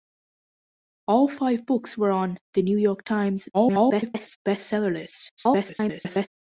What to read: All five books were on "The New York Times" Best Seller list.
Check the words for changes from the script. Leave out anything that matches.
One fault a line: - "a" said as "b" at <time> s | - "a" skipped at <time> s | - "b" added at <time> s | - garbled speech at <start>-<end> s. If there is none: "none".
- garbled speech at 3.5-4.4 s
- garbled speech at 5.4-6.3 s